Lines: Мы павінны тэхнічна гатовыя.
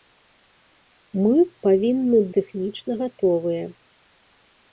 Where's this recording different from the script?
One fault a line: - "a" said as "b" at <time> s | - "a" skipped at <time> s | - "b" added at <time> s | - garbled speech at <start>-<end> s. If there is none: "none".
none